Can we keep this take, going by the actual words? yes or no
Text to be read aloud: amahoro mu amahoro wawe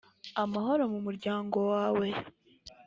no